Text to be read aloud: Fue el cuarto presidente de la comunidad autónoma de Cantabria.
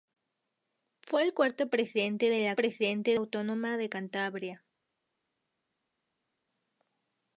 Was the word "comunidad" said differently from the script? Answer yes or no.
yes